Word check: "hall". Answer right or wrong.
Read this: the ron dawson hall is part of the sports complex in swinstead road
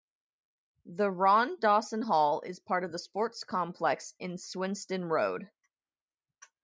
right